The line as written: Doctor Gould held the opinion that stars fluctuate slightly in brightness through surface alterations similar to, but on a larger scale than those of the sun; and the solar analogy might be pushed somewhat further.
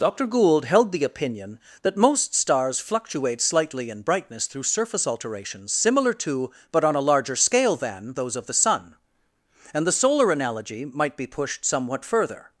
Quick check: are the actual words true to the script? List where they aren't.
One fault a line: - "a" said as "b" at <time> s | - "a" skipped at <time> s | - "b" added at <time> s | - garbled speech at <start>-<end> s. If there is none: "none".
- "most" added at 1.9 s